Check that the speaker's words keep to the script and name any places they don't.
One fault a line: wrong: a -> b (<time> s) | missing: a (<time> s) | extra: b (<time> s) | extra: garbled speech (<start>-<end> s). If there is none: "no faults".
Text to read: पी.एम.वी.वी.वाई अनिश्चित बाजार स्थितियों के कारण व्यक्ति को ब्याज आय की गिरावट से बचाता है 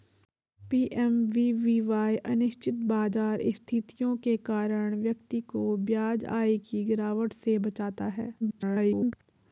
extra: garbled speech (8.4-9.1 s)